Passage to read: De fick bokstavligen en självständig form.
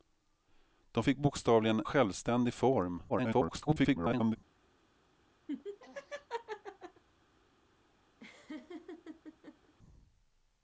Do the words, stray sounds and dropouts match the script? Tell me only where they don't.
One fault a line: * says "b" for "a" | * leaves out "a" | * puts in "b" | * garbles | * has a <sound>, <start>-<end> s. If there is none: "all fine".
* leaves out "en"
* garbles
* has a laugh, 5.5-7.0 s
* has a laugh, 8.2-9.7 s